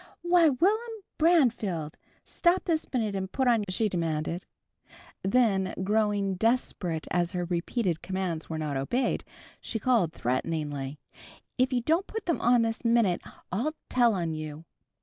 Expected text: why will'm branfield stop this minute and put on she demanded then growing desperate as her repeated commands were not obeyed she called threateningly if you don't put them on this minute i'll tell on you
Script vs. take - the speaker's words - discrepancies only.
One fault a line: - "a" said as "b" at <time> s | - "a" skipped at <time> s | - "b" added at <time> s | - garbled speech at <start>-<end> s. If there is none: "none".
none